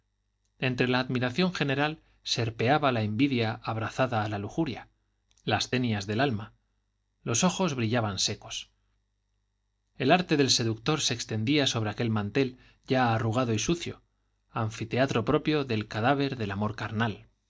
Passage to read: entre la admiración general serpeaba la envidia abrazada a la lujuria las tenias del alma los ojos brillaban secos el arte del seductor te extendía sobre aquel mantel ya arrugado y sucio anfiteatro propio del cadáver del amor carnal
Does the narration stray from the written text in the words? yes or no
yes